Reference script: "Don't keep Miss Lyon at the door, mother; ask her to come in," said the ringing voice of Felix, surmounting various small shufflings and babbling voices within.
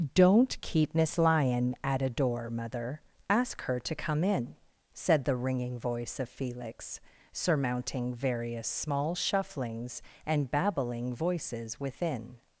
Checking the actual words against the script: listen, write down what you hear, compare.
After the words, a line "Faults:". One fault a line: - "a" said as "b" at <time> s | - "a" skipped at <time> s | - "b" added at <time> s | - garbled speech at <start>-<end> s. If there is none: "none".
"Don't keep Miss Lyon at a door, mother; ask her to come in," said the ringing voice of Felix, surmounting various small shufflings and babbling voices within.
Faults:
- "the" said as "a" at 2.0 s